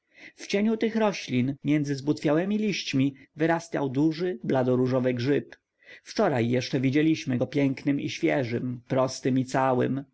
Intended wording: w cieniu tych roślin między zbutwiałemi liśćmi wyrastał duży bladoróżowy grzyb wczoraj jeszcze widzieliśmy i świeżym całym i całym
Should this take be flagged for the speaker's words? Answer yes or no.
yes